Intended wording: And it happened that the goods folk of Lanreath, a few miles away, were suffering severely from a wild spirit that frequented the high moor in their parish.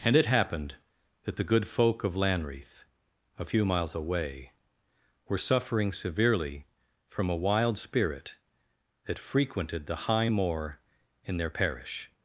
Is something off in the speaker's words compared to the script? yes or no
yes